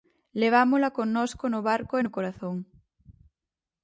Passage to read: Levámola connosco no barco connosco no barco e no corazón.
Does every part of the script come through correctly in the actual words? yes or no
no